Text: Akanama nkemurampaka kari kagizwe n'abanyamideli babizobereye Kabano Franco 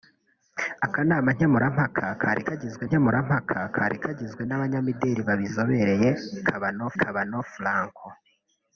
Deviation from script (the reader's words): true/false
true